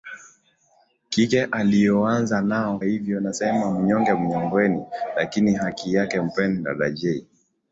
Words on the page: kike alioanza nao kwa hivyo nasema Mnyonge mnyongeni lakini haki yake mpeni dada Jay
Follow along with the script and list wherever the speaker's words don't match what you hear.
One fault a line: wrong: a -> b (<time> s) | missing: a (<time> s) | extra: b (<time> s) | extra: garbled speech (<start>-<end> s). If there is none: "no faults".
missing: kwa (2.8 s)